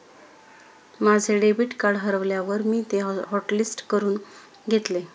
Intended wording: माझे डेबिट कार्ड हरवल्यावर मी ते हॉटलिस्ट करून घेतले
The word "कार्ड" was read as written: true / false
true